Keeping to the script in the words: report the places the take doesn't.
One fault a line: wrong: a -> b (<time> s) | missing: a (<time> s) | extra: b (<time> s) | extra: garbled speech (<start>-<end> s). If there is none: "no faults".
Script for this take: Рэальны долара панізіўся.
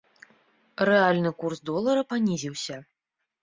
extra: курс (1.4 s)